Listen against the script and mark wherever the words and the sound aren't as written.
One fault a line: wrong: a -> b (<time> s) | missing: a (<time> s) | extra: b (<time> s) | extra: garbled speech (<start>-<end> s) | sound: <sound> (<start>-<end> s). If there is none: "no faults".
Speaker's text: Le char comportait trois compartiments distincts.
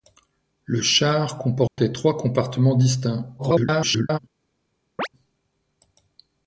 sound: dropout (1.7-1.8 s)
extra: garbled speech (3.4-4.2 s)
sound: chirp (5.0-5.1 s)